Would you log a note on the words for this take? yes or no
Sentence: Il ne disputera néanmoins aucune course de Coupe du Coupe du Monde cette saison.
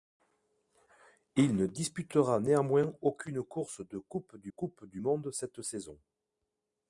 no